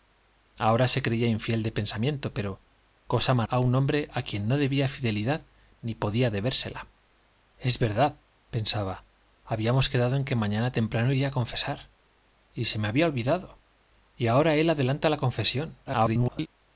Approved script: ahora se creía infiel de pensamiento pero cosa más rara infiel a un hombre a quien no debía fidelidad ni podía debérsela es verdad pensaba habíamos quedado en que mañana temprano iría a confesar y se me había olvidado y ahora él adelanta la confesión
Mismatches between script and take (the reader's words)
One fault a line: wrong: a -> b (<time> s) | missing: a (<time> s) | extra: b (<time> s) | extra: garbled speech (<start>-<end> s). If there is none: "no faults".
missing: rara infiel (3.5 s)
extra: garbled speech (15.9-16.5 s)